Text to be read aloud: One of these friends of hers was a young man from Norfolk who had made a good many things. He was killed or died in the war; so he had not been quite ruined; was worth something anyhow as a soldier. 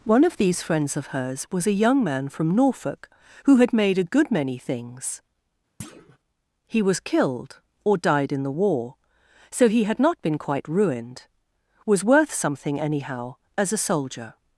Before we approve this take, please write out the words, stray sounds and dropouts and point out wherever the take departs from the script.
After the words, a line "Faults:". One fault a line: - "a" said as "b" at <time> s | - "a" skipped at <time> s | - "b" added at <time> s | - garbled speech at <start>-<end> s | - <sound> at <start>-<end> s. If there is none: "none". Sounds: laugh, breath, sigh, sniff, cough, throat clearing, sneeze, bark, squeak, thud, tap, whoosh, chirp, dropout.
One of these friends of hers was a young man from Norfolk who had made a good many things. He was killed or died in the war; so he had not been quite ruined; was worth something anyhow as a soldier.
Faults:
- thud at 5.8-6.2 s